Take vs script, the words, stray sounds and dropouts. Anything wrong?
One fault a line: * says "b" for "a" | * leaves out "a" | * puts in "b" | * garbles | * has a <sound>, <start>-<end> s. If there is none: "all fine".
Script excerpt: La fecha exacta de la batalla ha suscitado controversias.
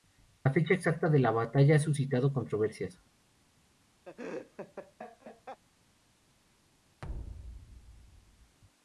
* has a laugh, 4.1-5.6 s
* has a thud, 7.0-8.6 s